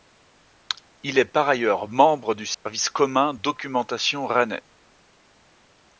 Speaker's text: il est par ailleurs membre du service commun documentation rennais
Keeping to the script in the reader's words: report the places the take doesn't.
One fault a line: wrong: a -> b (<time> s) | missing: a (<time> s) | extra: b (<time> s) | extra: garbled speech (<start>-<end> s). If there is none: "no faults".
no faults